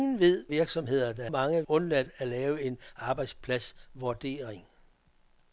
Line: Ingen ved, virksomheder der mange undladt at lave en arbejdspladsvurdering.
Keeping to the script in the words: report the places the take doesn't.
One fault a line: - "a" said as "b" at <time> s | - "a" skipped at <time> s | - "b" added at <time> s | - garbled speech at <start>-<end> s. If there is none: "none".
none